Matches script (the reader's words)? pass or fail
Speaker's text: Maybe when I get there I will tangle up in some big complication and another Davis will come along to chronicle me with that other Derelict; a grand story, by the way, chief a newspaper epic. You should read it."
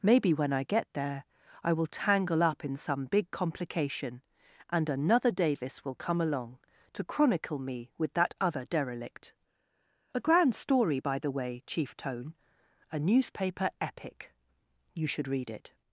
fail